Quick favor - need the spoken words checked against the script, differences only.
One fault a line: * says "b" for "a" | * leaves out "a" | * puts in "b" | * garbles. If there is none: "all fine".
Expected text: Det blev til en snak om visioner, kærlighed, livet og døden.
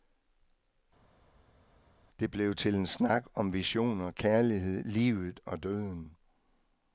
all fine